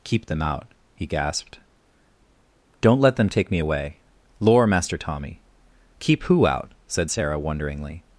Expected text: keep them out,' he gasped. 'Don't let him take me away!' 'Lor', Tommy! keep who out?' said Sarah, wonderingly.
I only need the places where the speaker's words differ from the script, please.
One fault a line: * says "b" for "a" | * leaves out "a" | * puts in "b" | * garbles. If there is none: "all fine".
* says "them" for "him"
* puts in "Master"